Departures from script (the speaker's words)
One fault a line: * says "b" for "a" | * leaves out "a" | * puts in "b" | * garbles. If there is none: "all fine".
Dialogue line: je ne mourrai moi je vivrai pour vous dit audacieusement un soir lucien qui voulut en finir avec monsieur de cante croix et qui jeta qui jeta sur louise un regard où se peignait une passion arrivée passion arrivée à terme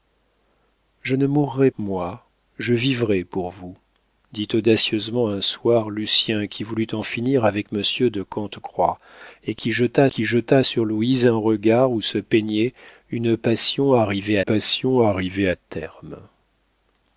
all fine